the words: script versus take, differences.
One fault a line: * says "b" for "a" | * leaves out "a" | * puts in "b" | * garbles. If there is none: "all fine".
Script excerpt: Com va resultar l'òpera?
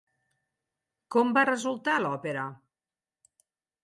all fine